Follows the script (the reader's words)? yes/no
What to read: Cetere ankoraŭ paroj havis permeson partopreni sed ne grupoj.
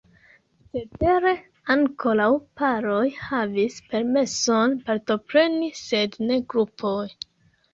yes